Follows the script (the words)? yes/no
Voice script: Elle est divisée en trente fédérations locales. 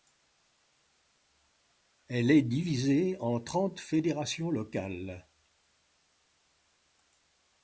yes